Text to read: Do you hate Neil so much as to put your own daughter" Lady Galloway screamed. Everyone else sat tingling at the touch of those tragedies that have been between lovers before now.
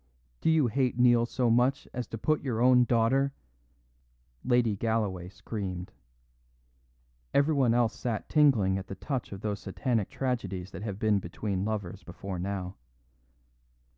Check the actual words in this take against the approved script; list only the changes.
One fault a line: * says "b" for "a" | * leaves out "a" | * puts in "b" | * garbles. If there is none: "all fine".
* puts in "satanic"